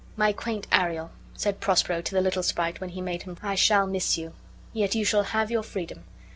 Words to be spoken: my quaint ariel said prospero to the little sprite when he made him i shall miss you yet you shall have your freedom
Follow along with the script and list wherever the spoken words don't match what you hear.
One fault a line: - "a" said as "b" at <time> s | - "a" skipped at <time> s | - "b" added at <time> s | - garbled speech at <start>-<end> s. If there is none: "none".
none